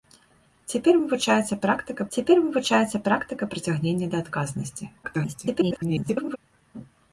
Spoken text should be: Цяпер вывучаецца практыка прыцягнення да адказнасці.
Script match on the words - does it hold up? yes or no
no